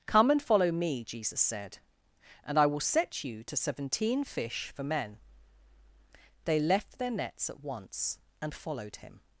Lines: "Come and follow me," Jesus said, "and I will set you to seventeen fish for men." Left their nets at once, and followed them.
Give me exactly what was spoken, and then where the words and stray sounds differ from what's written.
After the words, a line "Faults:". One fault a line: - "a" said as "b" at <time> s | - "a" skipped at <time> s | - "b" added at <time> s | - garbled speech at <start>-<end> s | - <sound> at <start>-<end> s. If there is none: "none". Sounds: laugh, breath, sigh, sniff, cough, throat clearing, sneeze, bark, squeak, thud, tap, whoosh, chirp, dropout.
"Come and follow me," Jesus said, "and I will set you to seventeen fish for men." They left their nets at once, and followed him.
Faults:
- "They" added at 6.5 s
- "them" said as "him" at 9.0 s